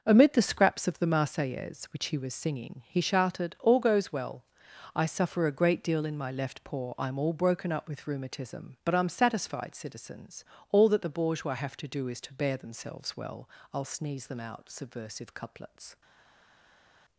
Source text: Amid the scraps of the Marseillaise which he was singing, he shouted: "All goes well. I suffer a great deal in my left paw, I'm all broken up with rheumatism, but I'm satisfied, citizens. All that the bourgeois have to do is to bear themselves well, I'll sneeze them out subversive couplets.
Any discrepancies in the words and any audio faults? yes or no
no